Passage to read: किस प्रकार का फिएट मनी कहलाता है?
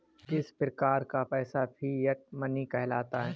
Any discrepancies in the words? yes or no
yes